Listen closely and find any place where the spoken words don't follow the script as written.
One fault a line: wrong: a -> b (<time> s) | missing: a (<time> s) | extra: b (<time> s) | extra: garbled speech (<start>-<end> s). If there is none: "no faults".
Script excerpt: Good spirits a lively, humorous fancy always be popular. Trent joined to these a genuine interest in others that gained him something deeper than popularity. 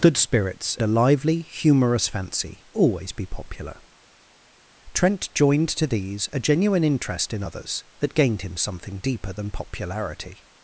no faults